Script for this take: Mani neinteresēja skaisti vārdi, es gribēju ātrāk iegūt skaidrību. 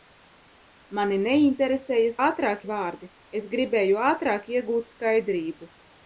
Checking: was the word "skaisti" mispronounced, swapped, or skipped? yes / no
yes